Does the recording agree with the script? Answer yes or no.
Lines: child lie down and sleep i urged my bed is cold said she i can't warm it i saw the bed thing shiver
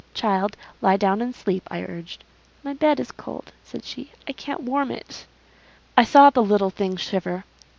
no